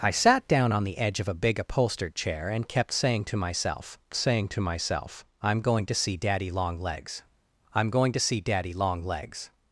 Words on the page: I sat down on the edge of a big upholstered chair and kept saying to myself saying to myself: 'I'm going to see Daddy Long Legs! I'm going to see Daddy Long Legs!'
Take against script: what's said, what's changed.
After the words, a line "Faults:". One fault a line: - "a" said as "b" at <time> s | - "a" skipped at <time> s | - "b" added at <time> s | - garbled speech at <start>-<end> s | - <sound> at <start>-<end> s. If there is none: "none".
I sat down on the edge of a big upholstered chair and kept saying to myself saying to myself: 'I'm going to see Daddy Long Legs! I'm going to see Daddy Long Legs!'
Faults:
none